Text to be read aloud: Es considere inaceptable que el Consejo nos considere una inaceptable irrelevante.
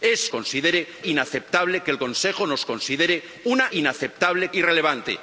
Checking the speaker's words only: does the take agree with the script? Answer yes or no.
yes